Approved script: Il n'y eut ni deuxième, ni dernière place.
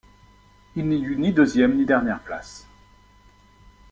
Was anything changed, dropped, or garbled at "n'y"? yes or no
no